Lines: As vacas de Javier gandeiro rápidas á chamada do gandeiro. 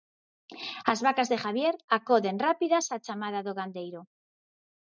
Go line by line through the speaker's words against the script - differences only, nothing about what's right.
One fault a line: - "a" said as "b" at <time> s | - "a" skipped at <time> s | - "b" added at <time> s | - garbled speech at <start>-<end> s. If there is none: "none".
- "gandeiro" said as "acoden" at 2.0 s